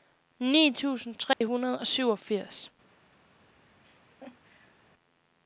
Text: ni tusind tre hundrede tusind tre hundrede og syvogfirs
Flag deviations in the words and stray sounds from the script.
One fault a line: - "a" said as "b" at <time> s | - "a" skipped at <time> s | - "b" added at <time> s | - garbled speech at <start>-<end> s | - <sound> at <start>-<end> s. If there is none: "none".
- dropout at 1.3-1.4 s
- "tusind tre hundrede" skipped at 1.8 s
- laugh at 3.8-4.8 s